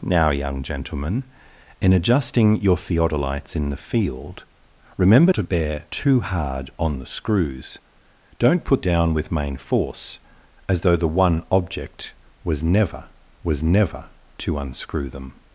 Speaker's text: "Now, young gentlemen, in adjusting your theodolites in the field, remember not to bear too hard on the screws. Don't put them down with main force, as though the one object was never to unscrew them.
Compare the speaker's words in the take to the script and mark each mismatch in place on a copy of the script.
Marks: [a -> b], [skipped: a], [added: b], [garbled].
"Now, young gentlemen, in adjusting your theodolites in the field, remember [skipped: not] to bear too hard on the screws. Don't put [skipped: them] down with main force, as though the one object was never [added: was never] to unscrew them.